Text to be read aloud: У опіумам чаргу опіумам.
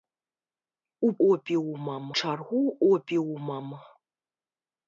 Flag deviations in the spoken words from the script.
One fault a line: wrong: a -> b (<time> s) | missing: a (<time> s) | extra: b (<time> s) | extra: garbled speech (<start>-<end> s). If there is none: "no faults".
no faults